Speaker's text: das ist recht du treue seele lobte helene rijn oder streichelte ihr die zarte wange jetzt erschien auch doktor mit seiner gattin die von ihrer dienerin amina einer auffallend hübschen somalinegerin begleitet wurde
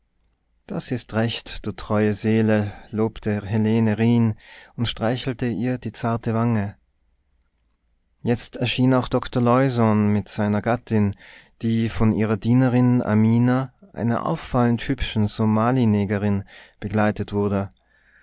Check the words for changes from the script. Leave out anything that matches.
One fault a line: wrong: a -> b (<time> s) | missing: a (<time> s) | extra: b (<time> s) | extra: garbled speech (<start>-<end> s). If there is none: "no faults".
wrong: oder -> und (4.8 s)
extra: leusohn (9.4 s)